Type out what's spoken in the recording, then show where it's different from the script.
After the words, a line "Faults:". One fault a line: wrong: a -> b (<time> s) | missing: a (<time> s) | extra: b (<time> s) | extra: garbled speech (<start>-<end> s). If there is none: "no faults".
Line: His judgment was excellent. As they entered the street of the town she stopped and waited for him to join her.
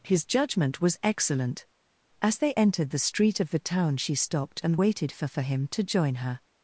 His judgment was excellent. As they entered the street of the town she stopped and waited for for him to join her.
Faults:
extra: for (5.3 s)